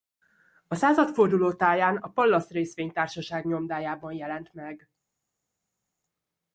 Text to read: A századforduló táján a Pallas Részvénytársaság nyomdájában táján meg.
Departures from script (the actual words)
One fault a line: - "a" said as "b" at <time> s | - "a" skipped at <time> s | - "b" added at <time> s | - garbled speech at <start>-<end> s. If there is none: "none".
- "táján" said as "jelent" at 4.1 s